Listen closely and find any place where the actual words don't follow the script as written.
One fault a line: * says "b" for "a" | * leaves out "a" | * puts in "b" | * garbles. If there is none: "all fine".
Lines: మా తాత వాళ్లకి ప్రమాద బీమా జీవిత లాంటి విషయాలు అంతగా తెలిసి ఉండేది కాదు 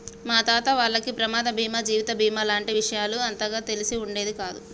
* puts in "బీమా"